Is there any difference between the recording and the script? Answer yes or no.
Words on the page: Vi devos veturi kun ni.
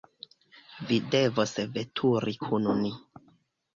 no